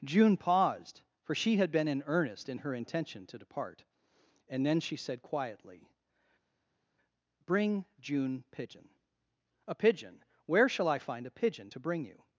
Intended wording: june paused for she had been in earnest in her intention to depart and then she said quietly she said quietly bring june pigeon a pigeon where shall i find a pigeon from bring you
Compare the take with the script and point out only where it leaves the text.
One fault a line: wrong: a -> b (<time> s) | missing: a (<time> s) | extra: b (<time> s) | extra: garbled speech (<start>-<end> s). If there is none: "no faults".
missing: she said quietly (5.9 s)
wrong: from -> to (11.7 s)